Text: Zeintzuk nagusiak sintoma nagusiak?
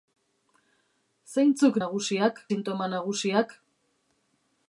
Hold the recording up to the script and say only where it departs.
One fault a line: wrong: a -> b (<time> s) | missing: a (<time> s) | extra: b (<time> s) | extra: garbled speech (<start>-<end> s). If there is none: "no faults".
no faults